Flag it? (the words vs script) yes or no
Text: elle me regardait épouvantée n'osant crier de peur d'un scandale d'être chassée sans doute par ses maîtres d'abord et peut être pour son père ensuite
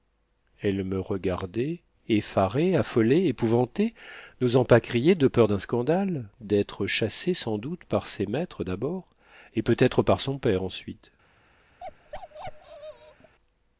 yes